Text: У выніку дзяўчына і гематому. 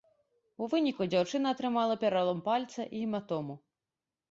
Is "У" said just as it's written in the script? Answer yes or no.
yes